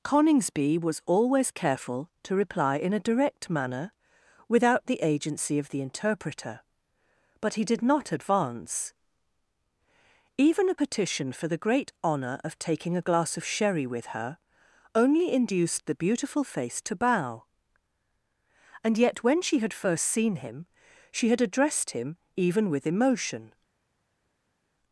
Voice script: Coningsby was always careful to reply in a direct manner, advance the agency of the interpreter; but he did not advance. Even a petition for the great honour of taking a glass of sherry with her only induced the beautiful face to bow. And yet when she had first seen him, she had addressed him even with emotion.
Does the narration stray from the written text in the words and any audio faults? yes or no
yes